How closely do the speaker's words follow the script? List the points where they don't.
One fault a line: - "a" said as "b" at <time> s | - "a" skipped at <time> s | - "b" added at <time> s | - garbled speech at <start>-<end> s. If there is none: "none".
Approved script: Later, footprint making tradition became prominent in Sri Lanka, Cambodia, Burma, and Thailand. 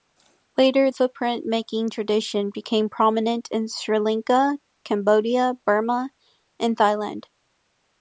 none